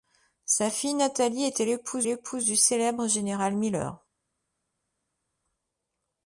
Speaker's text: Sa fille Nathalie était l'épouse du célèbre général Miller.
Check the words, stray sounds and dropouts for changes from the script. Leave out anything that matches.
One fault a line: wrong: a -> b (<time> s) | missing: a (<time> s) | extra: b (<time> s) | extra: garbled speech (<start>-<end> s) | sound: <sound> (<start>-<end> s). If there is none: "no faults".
extra: l'épouse (2.0 s)